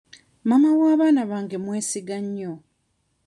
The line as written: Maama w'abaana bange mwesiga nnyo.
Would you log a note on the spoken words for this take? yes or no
no